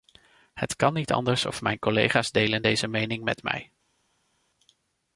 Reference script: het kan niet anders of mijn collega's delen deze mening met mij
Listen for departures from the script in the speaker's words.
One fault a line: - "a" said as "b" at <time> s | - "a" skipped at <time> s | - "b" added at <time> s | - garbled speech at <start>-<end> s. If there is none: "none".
none